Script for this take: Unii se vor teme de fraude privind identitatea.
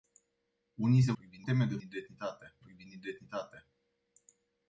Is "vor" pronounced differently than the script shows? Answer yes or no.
yes